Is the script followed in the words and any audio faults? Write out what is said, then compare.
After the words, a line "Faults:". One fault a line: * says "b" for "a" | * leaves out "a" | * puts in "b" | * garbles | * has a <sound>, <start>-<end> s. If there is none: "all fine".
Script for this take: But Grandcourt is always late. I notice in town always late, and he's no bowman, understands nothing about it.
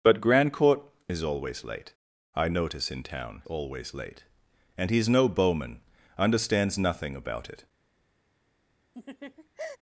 But Grandcourt is always late. I notice in town always late, and he's no bowman, understands nothing about it.
Faults:
* has a laugh, 8.9-9.8 s